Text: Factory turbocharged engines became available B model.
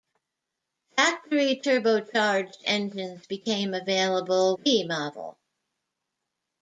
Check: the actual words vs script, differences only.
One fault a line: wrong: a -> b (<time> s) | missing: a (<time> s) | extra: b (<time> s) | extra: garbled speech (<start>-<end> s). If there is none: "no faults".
no faults